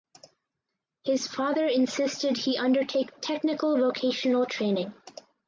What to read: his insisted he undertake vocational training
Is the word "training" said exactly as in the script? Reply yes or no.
yes